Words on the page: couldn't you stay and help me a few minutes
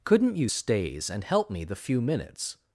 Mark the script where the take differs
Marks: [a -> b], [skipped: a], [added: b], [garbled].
couldn't you [stay -> stays] and help me [a -> the] few minutes